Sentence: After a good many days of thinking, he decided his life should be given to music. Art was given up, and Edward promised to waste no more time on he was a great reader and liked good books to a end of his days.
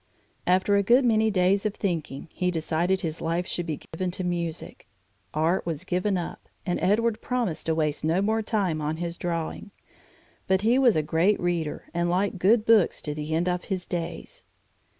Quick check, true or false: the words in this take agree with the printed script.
false